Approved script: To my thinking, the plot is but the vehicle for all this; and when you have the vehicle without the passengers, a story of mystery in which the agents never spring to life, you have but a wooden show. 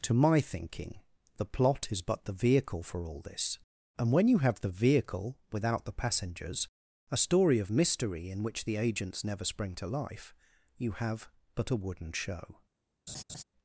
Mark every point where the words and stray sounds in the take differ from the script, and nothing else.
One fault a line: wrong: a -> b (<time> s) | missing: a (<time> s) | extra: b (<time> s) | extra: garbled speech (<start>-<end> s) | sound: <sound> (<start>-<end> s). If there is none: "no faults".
sound: laugh (13.1-13.4 s)